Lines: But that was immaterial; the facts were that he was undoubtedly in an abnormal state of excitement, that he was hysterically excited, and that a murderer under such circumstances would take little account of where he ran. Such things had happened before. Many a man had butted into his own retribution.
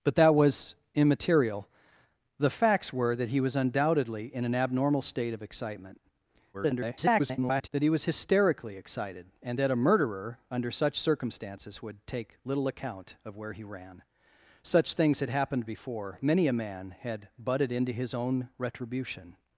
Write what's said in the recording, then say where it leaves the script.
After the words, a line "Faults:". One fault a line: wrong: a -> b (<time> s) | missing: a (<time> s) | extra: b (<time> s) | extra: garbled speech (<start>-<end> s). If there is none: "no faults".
But that was immaterial; the facts were that he was undoubtedly in an abnormal state of excitement, [garbled] that he was hysterically excited, and that a murderer under such circumstances would take little account of where he ran. Such things had happened before. Many a man had butted into his own retribution.
Faults:
extra: garbled speech (6.5-7.7 s)